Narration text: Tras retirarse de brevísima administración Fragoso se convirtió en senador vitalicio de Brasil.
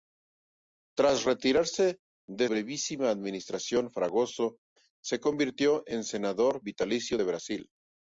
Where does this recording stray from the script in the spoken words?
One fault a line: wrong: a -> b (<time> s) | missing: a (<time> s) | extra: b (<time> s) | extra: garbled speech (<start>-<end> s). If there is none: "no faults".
no faults